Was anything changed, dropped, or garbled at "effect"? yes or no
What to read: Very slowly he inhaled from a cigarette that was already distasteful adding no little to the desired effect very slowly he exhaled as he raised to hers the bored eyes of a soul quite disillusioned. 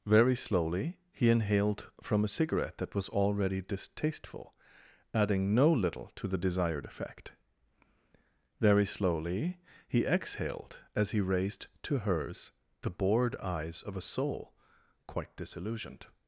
no